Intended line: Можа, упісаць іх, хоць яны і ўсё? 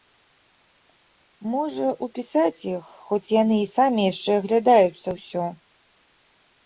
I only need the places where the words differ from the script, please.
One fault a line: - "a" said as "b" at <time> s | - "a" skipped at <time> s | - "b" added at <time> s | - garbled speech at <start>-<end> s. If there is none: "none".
- "самі яшчэ аглядаюцца" added at 3.8 s